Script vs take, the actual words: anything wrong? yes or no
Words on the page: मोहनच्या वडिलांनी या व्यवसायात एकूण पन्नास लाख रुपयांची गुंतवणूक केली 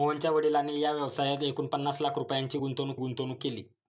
yes